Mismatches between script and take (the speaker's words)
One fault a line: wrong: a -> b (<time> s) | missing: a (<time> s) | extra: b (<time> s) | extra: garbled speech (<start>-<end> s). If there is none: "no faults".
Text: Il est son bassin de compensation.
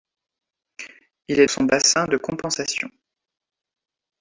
no faults